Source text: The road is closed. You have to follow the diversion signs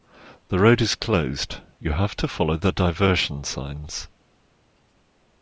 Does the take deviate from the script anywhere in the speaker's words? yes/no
no